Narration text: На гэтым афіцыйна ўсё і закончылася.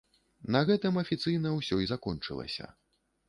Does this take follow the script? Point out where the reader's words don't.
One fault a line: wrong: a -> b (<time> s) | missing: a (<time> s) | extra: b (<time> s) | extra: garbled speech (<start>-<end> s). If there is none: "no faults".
no faults